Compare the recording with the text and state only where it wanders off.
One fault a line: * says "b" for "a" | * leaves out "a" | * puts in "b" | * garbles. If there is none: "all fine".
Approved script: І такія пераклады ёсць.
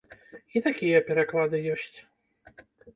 all fine